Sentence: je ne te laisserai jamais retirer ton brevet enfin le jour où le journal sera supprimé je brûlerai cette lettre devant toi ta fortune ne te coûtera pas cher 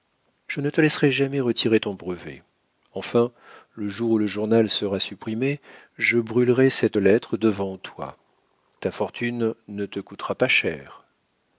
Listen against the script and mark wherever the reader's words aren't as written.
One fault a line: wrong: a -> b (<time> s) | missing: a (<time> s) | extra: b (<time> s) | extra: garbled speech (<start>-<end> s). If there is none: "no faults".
no faults